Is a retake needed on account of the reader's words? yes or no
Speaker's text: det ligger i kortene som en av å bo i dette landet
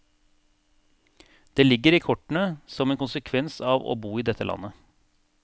yes